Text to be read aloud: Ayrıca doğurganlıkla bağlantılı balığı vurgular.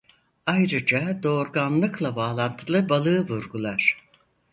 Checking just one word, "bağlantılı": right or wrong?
right